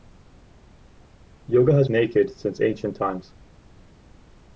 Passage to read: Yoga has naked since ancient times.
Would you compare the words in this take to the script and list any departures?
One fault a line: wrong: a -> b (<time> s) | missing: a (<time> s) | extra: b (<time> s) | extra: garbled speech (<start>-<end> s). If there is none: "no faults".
no faults